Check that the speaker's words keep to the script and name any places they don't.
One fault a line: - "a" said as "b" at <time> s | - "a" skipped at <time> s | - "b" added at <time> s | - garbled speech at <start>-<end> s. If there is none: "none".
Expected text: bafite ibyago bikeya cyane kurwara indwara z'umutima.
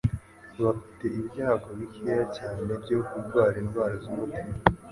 - "byo" added at 2.8 s